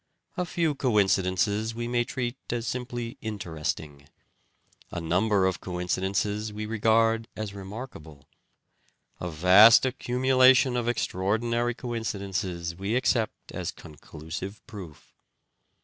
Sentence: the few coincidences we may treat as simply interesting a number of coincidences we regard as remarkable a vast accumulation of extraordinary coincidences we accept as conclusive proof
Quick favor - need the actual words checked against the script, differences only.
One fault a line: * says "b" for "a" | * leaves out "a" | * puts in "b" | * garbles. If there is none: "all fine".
* says "a" for "the"